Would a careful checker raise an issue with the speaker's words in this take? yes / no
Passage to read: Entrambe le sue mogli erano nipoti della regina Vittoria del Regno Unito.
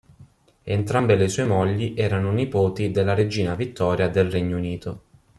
no